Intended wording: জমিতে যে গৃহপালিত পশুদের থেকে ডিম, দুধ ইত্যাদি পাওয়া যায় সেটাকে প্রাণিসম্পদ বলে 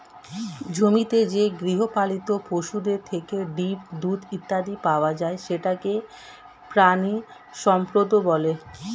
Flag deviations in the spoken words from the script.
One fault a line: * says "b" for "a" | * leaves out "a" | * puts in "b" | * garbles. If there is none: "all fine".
all fine